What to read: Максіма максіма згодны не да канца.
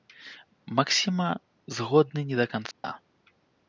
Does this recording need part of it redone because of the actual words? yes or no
yes